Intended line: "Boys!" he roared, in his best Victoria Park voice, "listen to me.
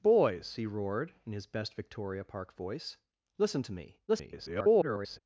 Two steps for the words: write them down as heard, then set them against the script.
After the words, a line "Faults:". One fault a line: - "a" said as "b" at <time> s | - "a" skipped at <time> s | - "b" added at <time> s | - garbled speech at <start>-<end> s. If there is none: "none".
"Boys!" he roared, in his best Victoria Park voice, "listen to me. [garbled]
Faults:
- garbled speech at 4.1-5.2 s